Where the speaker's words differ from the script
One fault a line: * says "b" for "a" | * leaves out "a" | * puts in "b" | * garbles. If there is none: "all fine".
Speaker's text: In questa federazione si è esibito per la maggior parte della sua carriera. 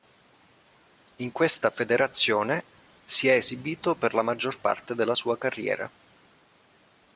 all fine